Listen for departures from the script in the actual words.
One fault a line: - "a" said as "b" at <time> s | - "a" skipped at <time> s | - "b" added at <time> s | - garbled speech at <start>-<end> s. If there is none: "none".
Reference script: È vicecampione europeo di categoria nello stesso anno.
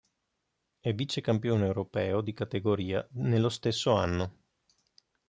none